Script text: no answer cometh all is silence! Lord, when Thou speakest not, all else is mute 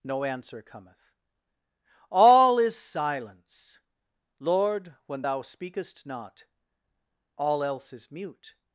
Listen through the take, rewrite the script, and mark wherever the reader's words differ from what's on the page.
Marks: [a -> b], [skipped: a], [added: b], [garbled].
no answer cometh all is silence! Lord, when Thou speakest not, all else is mute